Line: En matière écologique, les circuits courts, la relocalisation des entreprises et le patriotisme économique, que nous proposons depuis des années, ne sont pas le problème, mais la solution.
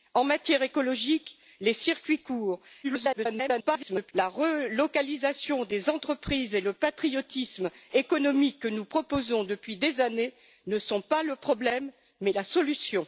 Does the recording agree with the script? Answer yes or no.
no